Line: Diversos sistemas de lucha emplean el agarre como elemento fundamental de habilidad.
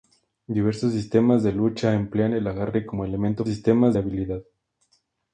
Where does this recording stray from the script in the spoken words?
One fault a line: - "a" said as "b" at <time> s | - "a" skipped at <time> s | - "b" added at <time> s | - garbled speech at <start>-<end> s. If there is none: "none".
- "fundamental" said as "sistemas" at 3.5 s